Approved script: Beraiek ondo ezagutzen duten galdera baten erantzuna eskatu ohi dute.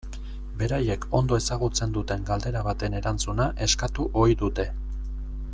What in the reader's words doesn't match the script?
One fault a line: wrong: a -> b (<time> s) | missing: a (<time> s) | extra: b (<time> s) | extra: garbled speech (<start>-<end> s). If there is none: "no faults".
no faults